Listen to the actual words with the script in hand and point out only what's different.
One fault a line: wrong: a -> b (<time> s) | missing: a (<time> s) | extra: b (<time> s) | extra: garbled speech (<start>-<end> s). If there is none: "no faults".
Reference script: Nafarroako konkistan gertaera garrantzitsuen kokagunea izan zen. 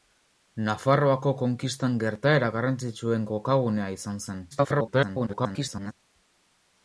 extra: garbled speech (4.5-5.9 s)